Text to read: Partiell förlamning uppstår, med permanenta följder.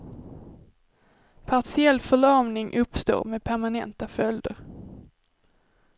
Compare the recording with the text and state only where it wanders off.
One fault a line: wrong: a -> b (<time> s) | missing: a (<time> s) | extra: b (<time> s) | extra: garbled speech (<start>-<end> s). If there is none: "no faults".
no faults